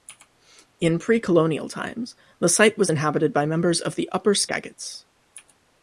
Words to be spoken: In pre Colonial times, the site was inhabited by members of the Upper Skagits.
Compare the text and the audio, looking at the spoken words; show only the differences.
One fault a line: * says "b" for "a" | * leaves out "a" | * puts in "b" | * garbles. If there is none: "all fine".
all fine